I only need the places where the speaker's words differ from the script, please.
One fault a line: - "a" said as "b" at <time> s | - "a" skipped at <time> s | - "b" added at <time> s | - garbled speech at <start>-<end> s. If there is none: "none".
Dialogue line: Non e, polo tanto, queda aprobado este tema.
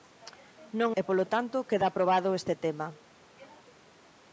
none